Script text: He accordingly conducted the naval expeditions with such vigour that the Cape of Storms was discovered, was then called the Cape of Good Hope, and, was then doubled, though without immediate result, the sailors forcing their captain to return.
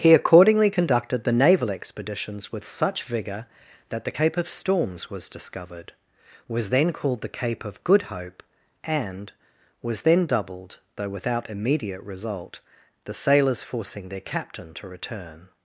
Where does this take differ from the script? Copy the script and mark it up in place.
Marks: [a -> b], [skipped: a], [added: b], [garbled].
He accordingly conducted the naval expeditions with such vigour that the Cape of Storms was discovered, was then called the Cape of Good Hope, and, was then doubled, though without immediate result, the sailors forcing their captain to return.